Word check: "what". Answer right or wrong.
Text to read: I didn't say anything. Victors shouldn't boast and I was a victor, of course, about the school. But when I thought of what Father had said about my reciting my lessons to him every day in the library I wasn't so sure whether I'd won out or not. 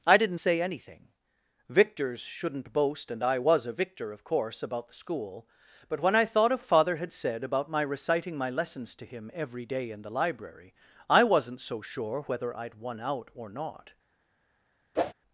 wrong